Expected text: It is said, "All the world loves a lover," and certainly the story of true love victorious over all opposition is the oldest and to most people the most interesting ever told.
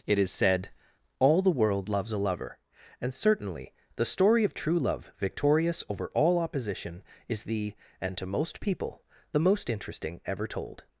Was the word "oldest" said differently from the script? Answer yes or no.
yes